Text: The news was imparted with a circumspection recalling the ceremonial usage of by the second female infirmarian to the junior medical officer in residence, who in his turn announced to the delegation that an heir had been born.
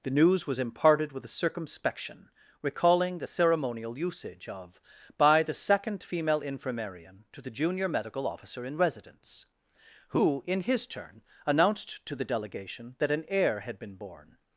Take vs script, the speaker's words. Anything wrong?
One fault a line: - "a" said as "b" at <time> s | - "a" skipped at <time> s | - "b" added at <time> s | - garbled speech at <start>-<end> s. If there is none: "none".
none